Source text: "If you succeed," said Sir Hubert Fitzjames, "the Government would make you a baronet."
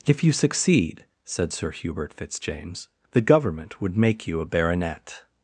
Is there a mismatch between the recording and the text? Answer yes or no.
no